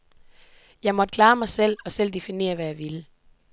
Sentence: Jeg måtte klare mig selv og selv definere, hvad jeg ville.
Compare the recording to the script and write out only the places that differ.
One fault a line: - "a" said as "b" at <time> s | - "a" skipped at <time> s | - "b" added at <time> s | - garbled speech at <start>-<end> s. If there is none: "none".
none